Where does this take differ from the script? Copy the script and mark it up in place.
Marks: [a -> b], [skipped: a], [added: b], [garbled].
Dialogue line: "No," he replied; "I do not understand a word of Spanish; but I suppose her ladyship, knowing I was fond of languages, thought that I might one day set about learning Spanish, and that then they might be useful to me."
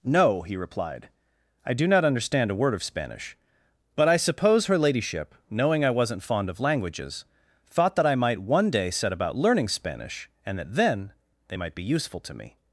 "No," he replied; "I do not understand a word of Spanish; but I suppose her ladyship, knowing I [was -> wasn't] fond of languages, thought that I might one day set about learning Spanish, and that then they might be useful to me."